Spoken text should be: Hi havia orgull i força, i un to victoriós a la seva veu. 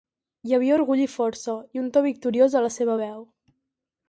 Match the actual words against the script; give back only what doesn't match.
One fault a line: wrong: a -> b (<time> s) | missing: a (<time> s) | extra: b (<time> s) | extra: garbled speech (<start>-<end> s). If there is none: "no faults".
no faults